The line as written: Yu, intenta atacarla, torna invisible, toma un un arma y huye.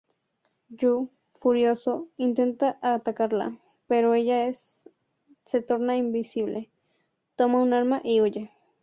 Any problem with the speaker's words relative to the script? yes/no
yes